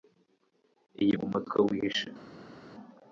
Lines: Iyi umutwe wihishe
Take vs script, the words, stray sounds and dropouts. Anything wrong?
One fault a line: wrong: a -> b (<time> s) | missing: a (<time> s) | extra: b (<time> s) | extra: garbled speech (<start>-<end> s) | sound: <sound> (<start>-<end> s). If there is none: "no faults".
no faults